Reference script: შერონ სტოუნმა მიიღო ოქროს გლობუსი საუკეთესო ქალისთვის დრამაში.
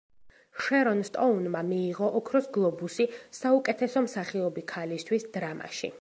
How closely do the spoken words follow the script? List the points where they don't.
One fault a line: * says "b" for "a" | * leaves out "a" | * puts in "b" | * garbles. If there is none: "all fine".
* puts in "მსახიობი"